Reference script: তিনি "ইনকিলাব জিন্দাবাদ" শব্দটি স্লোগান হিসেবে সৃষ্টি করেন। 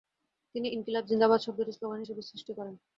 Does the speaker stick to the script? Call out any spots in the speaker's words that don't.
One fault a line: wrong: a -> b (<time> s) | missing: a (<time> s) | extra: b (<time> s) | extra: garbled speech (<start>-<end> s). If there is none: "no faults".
no faults